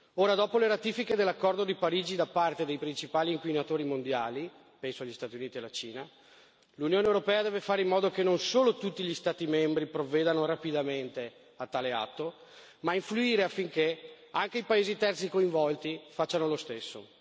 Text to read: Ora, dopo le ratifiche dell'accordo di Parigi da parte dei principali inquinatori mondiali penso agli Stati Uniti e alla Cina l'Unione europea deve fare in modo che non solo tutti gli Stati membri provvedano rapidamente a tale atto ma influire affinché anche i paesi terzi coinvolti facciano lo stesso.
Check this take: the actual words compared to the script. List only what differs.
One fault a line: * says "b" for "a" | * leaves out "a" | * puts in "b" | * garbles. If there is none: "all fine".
all fine